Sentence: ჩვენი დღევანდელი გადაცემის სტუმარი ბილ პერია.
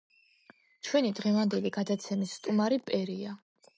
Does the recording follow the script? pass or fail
fail